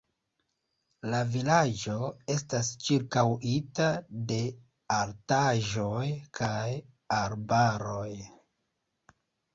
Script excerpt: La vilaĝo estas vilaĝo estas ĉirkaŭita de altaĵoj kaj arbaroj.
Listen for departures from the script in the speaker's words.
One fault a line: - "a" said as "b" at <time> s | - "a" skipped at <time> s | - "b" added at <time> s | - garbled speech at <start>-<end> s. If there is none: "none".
- "vilaĝo estas" skipped at 2.7 s